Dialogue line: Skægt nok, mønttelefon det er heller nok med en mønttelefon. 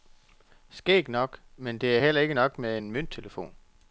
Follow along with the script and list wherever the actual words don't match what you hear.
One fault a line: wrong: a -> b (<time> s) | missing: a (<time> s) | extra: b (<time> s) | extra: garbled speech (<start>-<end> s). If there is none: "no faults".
wrong: mønttelefon -> men (1.6 s)
extra: ikke (2.2 s)